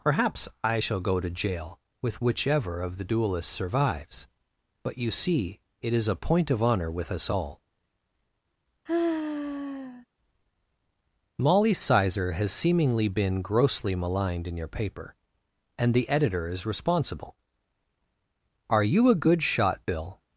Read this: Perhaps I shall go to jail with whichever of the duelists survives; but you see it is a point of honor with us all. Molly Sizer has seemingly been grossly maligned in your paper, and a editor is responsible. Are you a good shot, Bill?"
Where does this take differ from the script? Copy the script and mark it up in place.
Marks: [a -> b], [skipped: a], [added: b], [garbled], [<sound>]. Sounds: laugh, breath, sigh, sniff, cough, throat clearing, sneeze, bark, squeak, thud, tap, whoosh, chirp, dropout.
Perhaps I shall go to jail with whichever of the duelists survives; but you see it is a point of honor with us all. [sigh] Molly Sizer has seemingly been grossly maligned in your paper, and [a -> the] editor is responsible. Are you a good shot, Bill?"